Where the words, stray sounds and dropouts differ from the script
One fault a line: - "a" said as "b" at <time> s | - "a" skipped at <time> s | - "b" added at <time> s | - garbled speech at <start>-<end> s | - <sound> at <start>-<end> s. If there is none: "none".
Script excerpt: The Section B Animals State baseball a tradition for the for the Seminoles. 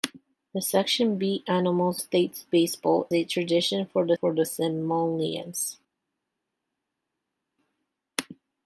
none